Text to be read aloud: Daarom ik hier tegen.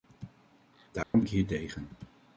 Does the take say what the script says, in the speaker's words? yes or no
yes